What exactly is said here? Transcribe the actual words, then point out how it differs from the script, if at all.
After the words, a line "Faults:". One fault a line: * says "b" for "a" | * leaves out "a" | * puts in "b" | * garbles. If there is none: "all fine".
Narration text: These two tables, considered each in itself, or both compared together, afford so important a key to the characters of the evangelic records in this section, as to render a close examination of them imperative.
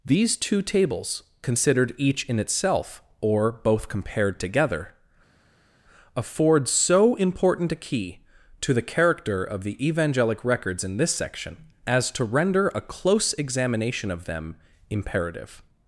These two tables, considered each in itself, or both compared together, afford so important a key to the character of the evangelic records in this section, as to render a close examination of them imperative.
Faults:
* says "character" for "characters"